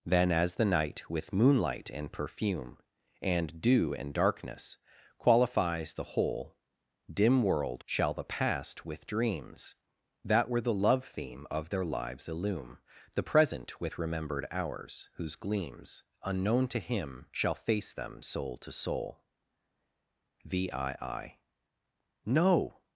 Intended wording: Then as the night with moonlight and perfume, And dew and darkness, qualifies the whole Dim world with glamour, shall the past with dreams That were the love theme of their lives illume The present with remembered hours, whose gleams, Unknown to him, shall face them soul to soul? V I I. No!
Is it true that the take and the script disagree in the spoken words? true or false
true